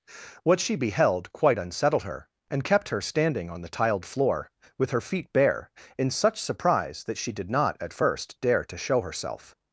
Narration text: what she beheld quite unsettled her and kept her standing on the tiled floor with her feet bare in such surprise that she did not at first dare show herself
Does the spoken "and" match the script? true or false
true